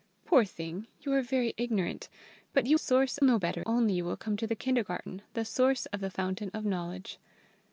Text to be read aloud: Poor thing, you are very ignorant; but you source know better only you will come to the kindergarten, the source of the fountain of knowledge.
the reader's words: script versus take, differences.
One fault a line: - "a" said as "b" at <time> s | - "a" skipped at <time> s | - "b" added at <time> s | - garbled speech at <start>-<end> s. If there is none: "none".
none